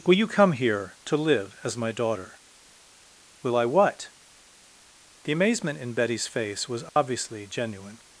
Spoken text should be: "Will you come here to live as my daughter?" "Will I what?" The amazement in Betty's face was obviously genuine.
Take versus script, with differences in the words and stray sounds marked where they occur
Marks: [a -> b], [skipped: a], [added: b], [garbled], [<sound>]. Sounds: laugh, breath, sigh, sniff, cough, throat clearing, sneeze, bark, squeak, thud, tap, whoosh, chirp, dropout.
"Will you come here to live as my daughter?" "Will I what?" The amazement in Betty's face was obviously [dropout] genuine.